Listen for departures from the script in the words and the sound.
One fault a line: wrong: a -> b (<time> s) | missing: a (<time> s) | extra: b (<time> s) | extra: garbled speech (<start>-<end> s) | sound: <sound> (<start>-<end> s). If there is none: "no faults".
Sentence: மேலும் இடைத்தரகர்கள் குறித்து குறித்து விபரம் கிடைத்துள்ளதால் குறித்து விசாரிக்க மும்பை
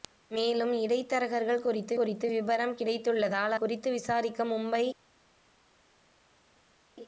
no faults